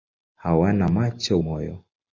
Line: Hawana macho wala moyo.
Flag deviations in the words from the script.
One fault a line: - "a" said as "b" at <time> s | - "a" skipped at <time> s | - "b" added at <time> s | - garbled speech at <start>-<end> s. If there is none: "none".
- "wala" skipped at 1.4 s